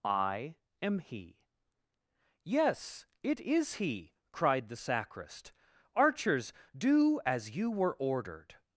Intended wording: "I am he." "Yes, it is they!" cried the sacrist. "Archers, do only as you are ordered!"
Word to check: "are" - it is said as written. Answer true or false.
false